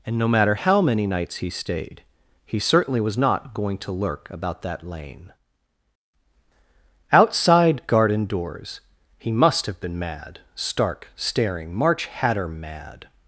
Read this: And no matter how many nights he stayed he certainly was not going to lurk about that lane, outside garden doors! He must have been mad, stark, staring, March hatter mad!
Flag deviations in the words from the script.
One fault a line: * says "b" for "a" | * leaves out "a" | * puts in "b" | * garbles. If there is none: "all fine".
all fine